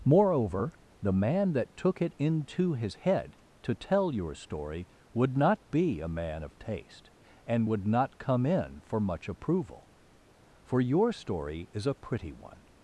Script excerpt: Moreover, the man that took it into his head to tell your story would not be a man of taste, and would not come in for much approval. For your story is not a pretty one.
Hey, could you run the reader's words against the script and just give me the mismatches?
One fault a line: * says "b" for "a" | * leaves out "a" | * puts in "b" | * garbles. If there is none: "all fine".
* leaves out "not"